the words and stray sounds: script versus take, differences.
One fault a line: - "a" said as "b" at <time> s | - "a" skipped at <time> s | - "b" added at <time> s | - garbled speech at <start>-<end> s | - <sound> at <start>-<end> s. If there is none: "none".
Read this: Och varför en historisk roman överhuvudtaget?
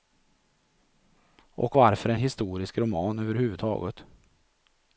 none